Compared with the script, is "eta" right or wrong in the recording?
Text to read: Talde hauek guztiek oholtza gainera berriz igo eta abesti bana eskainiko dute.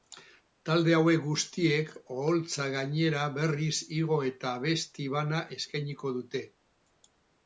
right